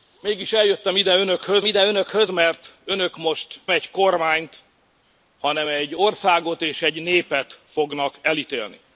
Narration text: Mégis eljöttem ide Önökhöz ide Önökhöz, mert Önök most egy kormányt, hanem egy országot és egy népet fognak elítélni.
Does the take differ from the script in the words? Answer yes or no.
no